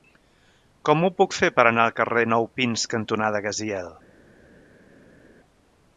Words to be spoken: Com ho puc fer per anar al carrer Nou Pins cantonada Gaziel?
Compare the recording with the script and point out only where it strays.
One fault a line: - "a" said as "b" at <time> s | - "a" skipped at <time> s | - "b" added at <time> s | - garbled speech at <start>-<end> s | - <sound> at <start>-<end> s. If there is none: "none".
none